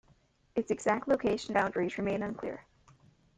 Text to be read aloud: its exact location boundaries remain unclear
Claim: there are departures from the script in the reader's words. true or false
false